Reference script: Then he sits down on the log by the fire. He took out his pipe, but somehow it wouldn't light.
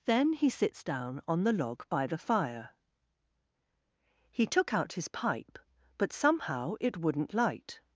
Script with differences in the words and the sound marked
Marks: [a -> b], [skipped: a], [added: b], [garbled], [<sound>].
Then he sits down on the log by the fire. He took out his pipe, but somehow it wouldn't light.